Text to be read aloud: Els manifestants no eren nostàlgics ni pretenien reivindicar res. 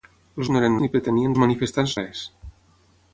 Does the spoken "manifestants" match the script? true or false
false